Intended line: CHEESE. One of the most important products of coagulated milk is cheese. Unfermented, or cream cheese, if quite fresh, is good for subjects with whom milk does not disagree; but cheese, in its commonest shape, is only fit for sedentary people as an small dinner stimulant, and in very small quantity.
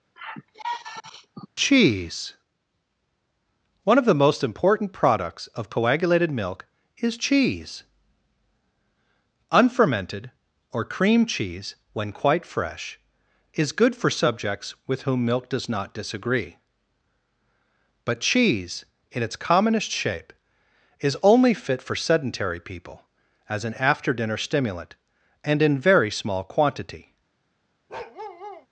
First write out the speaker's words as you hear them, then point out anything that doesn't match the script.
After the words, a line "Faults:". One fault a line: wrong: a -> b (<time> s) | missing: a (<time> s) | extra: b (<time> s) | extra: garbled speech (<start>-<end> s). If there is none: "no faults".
CHEESE. One of the most important products of coagulated milk is cheese. Unfermented, or cream cheese, when quite fresh, is good for subjects with whom milk does not disagree; but cheese, in its commonest shape, is only fit for sedentary people as an after dinner stimulant, and in very small quantity.
Faults:
wrong: if -> when (11.9 s)
wrong: small -> after (23.7 s)